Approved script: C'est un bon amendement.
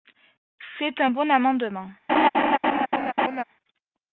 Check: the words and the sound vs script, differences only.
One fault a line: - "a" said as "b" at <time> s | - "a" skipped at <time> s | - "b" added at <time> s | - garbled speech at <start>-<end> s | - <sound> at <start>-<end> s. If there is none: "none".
- laugh at 2.1-3.4 s